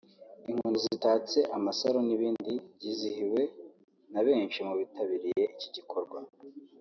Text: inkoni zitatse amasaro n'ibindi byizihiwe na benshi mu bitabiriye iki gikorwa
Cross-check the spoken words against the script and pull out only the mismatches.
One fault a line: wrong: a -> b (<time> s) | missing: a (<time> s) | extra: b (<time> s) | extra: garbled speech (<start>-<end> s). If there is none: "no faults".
no faults